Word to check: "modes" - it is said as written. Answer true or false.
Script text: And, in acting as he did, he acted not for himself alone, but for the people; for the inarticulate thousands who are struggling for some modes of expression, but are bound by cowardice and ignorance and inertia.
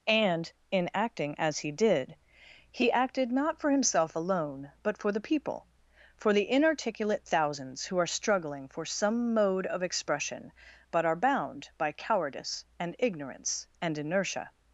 false